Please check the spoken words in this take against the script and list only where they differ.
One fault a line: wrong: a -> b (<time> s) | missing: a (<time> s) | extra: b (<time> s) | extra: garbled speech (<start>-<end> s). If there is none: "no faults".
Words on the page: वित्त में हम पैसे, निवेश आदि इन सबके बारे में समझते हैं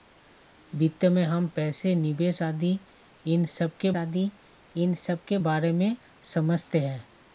extra: आदि इन सबके (3.9 s)